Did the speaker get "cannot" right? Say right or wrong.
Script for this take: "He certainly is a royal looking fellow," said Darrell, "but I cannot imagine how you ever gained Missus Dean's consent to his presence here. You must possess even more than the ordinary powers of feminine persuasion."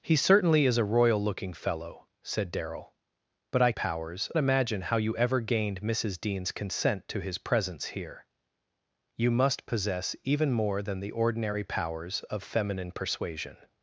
wrong